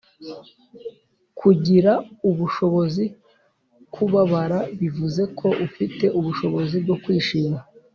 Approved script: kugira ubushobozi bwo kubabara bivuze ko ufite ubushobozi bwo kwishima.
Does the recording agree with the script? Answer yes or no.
no